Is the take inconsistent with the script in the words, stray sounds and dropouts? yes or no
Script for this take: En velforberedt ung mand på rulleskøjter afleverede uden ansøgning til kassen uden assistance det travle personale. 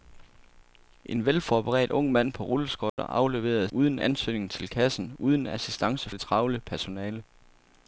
yes